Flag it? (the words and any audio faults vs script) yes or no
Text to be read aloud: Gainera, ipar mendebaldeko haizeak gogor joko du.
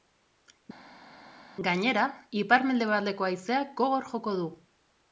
no